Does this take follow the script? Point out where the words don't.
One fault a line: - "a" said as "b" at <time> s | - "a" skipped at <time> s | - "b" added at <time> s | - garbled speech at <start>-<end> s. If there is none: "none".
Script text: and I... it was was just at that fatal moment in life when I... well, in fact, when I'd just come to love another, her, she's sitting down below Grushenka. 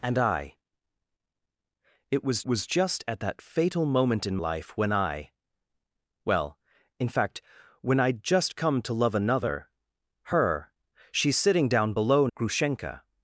none